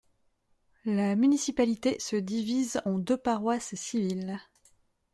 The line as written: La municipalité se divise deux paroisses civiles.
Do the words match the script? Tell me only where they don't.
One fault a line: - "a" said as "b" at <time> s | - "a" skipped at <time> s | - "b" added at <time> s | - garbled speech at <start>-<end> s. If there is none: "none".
- "en" added at 2.8 s